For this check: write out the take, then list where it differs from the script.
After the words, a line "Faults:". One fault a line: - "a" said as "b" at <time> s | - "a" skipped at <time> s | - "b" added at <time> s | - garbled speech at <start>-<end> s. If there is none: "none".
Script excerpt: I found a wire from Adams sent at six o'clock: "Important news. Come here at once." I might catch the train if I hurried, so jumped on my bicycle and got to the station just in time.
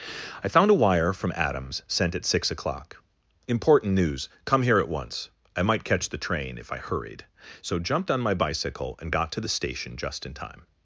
I found a wire from Adams sent at six o'clock: "Important news. Come here at once." I might catch the train if I hurried, so jumped on my bicycle and got to the station just in time.
Faults:
none